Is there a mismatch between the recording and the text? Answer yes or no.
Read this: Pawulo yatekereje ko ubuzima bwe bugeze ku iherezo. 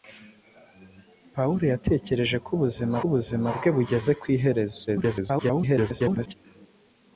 yes